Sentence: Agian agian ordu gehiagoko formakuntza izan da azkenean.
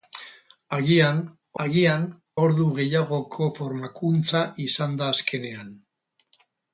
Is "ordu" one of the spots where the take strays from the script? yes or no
no